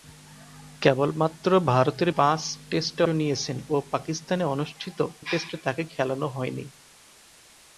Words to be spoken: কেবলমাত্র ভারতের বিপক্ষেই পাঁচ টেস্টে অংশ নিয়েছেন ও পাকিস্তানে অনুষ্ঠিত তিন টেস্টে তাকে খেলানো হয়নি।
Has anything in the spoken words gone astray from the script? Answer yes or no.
yes